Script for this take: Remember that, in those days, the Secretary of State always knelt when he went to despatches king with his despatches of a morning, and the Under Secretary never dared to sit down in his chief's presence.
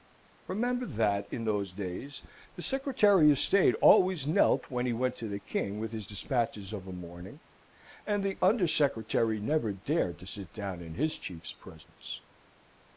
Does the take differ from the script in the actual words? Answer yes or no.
yes